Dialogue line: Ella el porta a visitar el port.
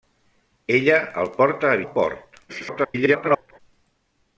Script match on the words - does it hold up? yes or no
no